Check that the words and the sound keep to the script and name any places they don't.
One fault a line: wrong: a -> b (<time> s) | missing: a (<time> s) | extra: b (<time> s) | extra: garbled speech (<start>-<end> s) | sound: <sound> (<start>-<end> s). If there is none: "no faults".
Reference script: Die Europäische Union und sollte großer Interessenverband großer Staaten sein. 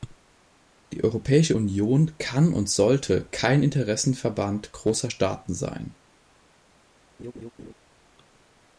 extra: kann (2.2 s)
wrong: großer -> kein (3.3 s)
sound: laugh (7.2-7.7 s)